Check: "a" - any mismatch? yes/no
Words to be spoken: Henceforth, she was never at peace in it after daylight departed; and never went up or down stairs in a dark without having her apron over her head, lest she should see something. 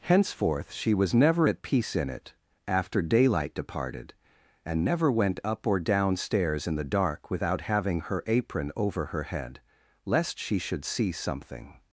yes